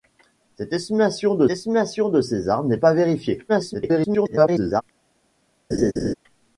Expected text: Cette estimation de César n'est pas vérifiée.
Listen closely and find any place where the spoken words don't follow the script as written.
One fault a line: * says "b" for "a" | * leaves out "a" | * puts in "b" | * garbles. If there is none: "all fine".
* puts in "estimation de"
* garbles